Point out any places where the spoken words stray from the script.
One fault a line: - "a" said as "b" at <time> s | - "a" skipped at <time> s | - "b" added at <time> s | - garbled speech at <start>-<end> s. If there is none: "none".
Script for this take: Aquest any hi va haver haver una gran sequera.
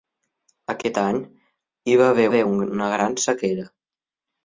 none